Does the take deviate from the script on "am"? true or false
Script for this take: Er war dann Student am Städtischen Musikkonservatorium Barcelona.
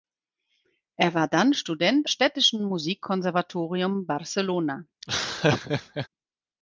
true